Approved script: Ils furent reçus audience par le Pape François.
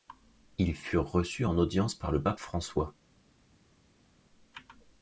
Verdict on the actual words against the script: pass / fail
fail